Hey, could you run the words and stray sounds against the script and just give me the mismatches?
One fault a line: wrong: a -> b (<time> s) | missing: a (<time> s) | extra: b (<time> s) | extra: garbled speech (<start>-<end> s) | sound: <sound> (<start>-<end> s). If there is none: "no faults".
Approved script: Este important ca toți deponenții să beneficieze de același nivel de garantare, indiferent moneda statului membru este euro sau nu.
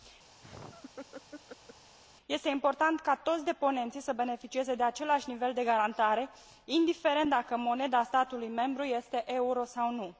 sound: laugh (0.4-2.0 s)
extra: dacă (7.3 s)